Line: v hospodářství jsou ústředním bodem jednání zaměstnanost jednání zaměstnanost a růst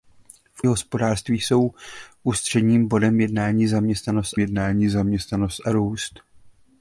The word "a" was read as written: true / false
true